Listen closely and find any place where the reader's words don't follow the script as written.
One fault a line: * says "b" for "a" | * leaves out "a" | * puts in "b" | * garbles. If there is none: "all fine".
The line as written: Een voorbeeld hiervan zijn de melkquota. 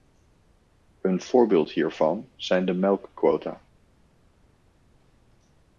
all fine